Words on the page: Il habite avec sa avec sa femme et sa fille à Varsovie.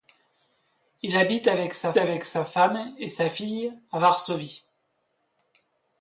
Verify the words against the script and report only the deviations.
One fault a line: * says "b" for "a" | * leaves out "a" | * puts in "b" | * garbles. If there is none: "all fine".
all fine